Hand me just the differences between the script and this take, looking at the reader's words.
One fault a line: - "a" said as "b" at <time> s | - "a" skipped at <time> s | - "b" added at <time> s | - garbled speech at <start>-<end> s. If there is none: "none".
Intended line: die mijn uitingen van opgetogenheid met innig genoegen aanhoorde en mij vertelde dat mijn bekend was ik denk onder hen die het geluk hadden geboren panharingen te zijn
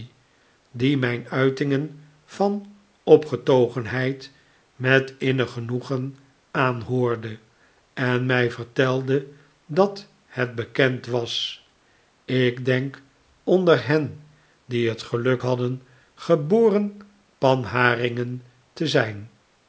- "mijn" said as "het" at 10.2 s